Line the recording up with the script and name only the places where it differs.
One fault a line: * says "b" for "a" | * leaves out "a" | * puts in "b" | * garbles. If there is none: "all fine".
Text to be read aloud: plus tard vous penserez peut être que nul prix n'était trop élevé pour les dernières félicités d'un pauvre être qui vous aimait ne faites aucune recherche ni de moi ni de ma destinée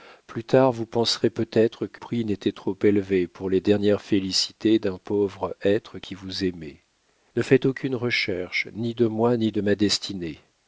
* leaves out "nul"